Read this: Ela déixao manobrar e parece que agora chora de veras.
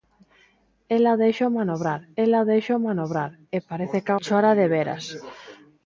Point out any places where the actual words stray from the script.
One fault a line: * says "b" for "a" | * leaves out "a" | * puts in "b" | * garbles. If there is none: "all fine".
* puts in "ela déixao manobrar"
* leaves out "agora"